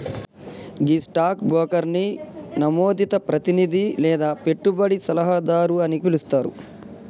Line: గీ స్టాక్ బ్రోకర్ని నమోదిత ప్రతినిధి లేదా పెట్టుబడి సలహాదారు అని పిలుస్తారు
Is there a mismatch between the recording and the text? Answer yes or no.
no